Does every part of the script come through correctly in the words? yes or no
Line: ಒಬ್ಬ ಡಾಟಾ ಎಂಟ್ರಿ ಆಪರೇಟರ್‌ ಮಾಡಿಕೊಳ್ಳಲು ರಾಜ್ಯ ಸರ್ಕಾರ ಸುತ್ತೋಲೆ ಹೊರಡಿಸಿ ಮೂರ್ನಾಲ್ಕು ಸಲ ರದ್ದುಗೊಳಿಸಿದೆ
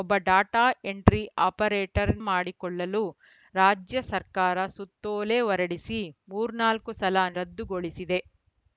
yes